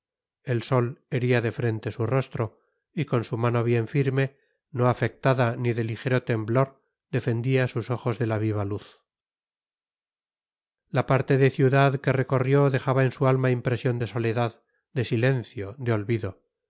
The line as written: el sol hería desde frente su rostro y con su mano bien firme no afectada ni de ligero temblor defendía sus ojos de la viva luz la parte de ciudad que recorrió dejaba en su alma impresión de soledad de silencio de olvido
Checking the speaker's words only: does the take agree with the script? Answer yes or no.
no